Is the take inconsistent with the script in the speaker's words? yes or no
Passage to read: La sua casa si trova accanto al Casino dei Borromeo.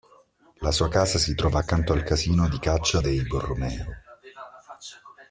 yes